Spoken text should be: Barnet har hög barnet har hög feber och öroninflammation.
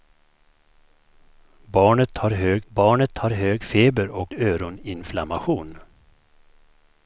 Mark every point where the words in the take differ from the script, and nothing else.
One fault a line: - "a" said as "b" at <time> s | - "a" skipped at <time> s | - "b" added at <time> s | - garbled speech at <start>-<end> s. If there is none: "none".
none